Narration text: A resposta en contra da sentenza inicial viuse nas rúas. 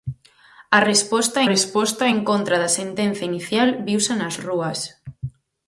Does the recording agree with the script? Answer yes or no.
no